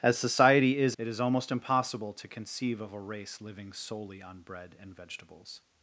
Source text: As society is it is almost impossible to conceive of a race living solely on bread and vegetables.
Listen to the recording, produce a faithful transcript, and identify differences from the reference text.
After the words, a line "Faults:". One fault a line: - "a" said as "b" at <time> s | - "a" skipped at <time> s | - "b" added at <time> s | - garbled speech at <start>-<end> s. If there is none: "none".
As society is it is almost impossible to conceive of a race living solely on bread and vegetables.
Faults:
none